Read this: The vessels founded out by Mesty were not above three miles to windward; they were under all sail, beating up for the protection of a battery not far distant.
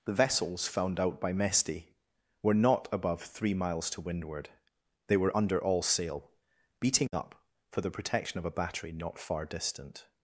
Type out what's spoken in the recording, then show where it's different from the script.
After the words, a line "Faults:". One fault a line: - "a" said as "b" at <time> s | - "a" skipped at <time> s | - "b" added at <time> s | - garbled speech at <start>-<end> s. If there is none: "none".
The vessels found out by Mesty were not above three miles to windward; they were under all sail, beating up for the protection of a battery not far distant.
Faults:
- "founded" said as "found" at 0.7 s